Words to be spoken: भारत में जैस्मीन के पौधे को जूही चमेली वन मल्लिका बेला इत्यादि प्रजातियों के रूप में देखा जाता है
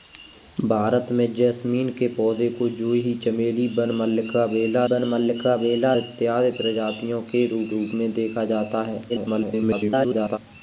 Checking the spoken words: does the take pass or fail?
fail